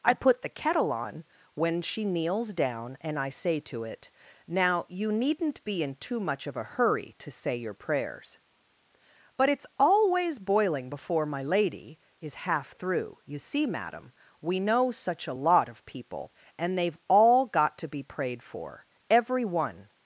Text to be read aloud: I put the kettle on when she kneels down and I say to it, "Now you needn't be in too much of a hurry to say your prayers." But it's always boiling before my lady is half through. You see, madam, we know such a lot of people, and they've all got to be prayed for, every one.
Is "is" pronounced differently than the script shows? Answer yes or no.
no